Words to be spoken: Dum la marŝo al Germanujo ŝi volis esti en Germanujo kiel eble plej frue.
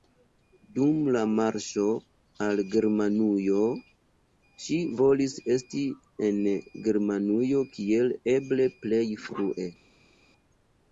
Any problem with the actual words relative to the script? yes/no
no